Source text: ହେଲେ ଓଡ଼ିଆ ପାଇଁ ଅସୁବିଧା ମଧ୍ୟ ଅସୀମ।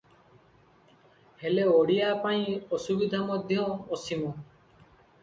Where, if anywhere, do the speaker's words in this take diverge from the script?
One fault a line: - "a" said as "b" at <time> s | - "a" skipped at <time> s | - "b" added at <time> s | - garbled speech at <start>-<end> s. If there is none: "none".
none